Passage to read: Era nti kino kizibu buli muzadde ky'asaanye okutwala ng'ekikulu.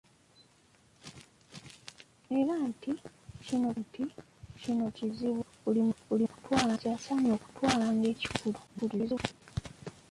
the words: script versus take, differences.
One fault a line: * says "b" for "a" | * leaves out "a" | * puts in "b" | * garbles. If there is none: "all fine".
* puts in "nti kino"
* says "okutwala" for "muzadde"
* garbles